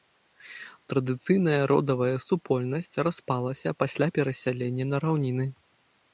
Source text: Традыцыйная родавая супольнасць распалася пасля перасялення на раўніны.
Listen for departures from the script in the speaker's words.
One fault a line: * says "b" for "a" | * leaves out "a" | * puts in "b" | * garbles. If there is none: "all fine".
all fine